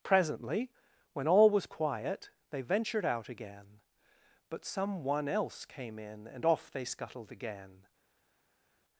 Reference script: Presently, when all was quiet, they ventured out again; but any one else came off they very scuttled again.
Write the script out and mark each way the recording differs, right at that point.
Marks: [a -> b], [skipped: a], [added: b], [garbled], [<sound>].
Presently, when all was quiet, they ventured out again; but [any -> some] one else came [added: in and] off they [skipped: very] scuttled again.